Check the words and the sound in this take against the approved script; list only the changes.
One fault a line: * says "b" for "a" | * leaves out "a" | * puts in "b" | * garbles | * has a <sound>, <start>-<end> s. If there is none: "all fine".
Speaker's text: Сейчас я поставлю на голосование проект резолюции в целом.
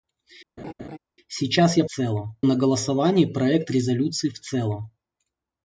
* has a laugh, 0.6-1.0 s
* says "целом" for "поставлю"